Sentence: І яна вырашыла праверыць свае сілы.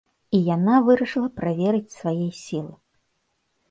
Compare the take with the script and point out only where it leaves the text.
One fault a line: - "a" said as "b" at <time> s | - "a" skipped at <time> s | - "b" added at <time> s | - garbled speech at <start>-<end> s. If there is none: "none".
none